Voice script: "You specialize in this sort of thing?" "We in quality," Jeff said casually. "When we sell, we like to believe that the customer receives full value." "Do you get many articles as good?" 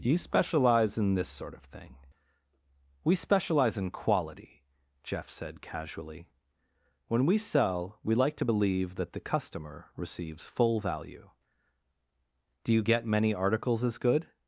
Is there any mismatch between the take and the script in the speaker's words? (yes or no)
yes